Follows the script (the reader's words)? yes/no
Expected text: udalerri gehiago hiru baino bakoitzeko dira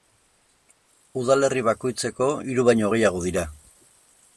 no